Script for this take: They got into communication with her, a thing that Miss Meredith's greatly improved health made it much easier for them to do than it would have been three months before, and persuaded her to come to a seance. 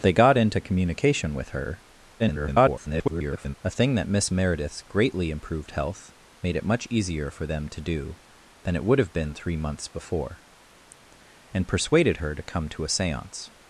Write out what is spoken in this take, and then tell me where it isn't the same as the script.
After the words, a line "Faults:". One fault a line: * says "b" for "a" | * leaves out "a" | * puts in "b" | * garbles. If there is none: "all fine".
They got into communication with her, [garbled] a thing that Miss Meredith's greatly improved health made it much easier for them to do than it would have been three months before, and persuaded her to come to a seance.
Faults:
* garbles